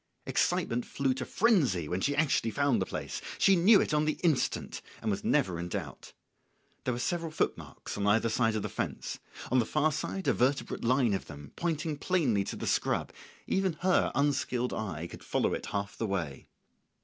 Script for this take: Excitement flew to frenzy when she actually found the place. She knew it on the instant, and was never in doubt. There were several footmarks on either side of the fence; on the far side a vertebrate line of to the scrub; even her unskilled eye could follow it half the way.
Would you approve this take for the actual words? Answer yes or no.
no